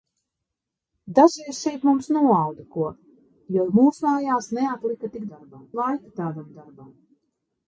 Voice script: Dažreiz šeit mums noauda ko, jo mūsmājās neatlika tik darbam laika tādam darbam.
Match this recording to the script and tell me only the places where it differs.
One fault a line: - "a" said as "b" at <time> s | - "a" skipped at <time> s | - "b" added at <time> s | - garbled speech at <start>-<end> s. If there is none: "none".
none